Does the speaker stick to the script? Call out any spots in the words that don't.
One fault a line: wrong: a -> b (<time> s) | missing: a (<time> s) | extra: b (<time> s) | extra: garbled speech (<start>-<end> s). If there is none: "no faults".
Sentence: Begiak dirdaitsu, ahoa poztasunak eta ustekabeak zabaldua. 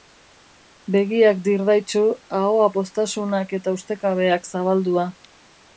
no faults